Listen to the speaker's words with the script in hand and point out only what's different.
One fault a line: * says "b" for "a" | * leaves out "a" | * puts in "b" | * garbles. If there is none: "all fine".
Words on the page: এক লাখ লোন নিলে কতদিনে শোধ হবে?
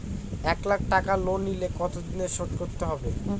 * puts in "টাকা"
* puts in "করতে"